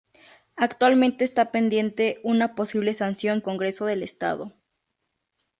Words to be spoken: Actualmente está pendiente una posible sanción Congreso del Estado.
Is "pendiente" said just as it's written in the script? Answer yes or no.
yes